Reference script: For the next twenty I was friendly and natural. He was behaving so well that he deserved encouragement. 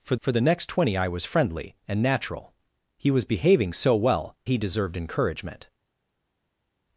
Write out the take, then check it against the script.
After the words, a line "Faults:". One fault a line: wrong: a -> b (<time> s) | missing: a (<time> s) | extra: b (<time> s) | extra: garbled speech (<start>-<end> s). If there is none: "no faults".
For for the next twenty I was friendly and natural. He was behaving so well he deserved encouragement.
Faults:
extra: for (0.2 s)
missing: that (4.3 s)